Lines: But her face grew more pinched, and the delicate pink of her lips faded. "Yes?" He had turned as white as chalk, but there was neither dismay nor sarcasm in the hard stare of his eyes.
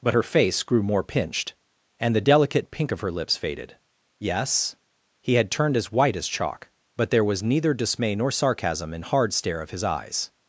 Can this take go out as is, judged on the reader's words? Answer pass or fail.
fail